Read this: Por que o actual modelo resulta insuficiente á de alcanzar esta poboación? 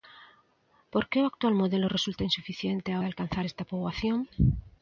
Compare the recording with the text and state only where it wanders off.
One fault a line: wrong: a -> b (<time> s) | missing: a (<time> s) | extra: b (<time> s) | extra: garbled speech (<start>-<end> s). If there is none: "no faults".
no faults